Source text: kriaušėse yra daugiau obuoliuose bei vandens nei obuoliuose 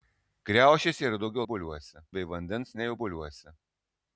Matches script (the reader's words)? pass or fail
pass